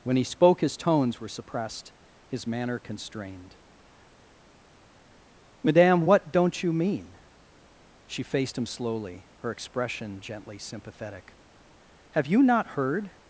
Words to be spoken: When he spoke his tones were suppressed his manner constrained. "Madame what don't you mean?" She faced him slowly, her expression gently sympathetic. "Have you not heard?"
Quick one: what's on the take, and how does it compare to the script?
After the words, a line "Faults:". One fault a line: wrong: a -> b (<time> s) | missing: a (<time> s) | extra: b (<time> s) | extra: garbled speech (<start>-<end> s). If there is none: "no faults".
When he spoke his tones were suppressed his manner constrained. "Madame what don't you mean?" She faced him slowly, her expression gently sympathetic. "Have you not heard?"
Faults:
no faults